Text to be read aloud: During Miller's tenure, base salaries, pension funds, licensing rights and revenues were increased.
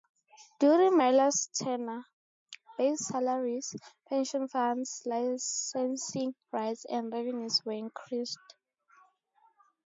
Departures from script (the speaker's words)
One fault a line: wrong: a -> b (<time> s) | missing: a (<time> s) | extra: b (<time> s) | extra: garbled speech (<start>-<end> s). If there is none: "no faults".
no faults